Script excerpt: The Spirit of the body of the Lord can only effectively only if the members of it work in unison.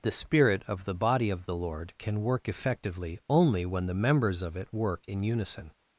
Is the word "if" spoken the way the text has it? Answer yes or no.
no